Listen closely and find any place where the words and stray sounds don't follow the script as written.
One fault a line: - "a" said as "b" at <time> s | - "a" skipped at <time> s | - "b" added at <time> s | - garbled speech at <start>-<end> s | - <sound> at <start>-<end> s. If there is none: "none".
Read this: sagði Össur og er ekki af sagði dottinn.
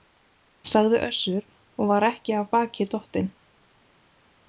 - "er" said as "var" at 1.9 s
- "sagði" said as "baki" at 2.5 s